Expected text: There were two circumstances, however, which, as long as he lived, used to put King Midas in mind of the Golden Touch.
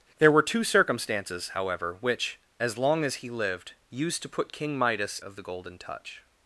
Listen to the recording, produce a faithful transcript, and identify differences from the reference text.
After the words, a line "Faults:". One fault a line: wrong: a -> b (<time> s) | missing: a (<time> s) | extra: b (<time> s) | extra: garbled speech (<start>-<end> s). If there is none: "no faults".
There were two circumstances, however, which, as long as he lived, used to put King Midas of the Golden Touch.
Faults:
missing: in mind (5.2 s)